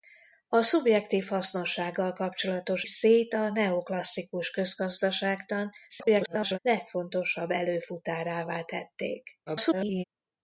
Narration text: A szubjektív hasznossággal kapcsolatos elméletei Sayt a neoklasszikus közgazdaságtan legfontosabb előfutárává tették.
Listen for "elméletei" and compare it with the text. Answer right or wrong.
wrong